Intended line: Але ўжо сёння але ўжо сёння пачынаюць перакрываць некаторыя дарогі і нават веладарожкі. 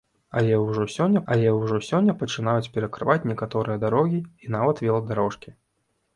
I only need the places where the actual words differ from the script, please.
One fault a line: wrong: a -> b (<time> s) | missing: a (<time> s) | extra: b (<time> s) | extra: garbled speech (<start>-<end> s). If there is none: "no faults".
no faults